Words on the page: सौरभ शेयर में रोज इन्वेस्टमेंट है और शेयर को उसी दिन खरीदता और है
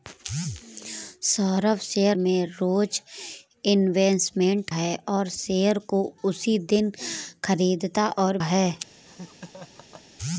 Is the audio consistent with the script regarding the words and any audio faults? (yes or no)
no